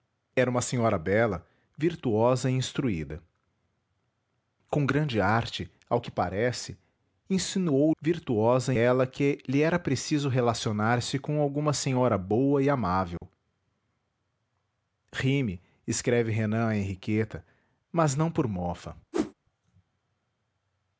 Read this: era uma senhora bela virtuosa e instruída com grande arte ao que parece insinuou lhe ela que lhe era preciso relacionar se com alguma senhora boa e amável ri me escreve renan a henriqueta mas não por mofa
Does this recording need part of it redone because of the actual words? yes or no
yes